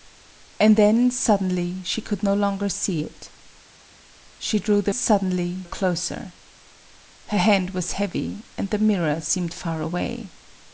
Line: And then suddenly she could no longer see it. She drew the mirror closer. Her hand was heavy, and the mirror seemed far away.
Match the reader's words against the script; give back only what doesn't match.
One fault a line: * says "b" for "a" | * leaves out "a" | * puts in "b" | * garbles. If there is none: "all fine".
* says "suddenly" for "mirror"